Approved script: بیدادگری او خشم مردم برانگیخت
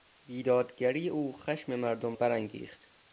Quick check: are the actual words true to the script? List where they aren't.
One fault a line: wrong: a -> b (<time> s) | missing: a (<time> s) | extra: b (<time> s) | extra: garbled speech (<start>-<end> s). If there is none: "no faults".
no faults